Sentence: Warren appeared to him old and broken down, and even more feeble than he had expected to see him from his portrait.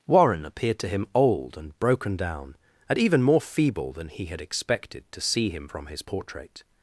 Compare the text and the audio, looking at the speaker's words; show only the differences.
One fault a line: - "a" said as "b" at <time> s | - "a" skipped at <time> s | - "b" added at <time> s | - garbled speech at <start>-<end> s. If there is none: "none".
none